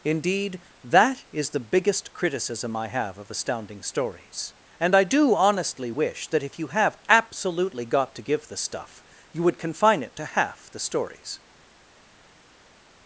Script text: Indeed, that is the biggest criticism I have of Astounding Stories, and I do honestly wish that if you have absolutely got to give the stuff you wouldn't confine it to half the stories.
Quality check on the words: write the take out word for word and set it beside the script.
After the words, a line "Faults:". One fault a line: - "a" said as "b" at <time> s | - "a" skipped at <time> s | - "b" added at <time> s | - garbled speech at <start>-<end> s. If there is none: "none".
Indeed, that is the biggest criticism I have of Astounding Stories, and I do honestly wish that if you have absolutely got to give the stuff you would confine it to half the stories.
Faults:
- "wouldn't" said as "would" at 9.4 s